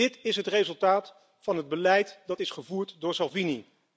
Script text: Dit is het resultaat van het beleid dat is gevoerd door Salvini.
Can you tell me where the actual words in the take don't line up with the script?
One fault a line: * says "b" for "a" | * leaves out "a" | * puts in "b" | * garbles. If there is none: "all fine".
all fine